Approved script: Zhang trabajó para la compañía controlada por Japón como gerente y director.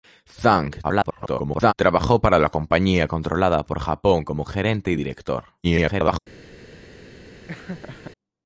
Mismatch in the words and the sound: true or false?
true